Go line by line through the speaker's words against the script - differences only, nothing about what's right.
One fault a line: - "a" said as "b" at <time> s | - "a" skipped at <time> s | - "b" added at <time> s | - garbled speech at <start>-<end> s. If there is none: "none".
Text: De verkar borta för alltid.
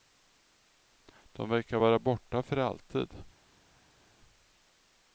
- "vara" added at 1.8 s